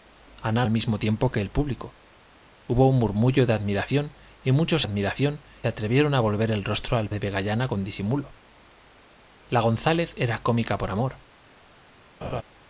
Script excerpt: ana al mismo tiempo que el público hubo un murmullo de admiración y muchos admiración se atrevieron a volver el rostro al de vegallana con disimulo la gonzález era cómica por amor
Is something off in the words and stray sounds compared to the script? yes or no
yes